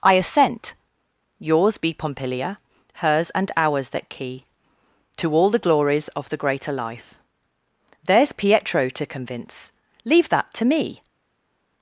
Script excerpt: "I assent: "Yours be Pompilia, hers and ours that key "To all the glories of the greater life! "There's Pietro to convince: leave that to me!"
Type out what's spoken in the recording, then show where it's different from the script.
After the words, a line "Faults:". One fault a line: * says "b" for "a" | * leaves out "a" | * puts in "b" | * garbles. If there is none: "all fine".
"I assent: "Yours be Pompilia, hers and ours that key "To all the glories of the greater life! "There's Pietro to convince: leave that to me!"
Faults:
all fine